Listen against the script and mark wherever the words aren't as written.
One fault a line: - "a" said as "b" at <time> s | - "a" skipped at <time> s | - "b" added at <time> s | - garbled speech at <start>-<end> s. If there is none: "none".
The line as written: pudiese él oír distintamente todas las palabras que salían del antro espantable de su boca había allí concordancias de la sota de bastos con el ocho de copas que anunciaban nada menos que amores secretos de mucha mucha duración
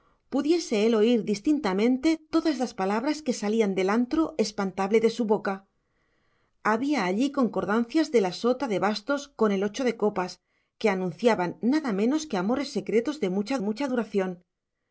none